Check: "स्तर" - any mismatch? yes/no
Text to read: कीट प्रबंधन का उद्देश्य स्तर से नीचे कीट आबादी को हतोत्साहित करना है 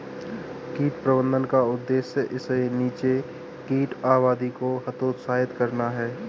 yes